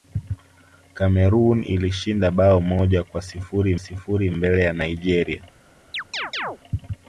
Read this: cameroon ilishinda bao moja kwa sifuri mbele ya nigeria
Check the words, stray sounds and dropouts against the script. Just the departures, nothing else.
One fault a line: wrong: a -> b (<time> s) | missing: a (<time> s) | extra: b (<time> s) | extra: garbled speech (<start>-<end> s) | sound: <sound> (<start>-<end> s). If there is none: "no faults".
extra: sifuri (3.8 s)
sound: chirp (5.9-6.6 s)